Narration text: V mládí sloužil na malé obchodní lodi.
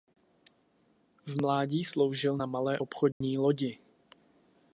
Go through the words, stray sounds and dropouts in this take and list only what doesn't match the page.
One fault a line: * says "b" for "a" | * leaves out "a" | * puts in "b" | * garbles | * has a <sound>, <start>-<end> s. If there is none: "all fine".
* has a dropout, 3.1-3.2 s